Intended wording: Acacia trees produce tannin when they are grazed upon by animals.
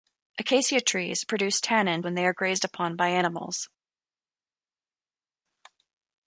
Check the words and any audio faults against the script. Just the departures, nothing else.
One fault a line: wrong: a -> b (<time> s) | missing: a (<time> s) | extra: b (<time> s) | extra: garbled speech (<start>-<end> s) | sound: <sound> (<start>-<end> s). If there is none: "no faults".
no faults